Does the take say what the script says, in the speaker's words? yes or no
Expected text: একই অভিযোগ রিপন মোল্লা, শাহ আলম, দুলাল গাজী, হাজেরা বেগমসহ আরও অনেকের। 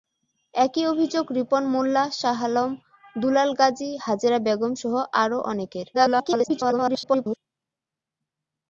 no